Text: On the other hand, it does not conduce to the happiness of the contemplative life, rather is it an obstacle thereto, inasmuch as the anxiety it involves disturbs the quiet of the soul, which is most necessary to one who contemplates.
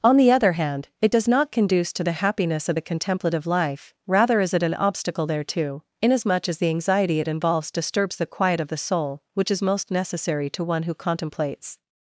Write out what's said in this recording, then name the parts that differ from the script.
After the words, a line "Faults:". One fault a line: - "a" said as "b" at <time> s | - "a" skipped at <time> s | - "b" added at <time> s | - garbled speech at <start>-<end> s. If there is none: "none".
On the other hand, it does not conduce to the happiness of the contemplative life, rather is it an obstacle thereto, inasmuch as the anxiety it involves disturbs the quiet of the soul, which is most necessary to one who contemplates.
Faults:
none